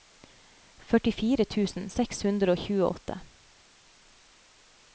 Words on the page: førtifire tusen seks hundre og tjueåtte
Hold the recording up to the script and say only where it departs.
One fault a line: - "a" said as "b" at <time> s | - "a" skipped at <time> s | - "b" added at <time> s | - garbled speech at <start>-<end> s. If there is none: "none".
none